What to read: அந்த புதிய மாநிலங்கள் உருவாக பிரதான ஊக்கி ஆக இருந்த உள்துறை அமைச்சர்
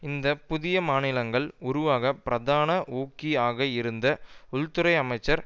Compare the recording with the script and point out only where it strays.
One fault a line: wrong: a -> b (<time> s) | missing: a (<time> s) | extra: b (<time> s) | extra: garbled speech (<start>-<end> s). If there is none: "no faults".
wrong: அந்த -> இந்த (0.0 s)